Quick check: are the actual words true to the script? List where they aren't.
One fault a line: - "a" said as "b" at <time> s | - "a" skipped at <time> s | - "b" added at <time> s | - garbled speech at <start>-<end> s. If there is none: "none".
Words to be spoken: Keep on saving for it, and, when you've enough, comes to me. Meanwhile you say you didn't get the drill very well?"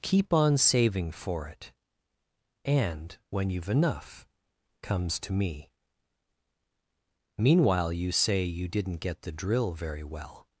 none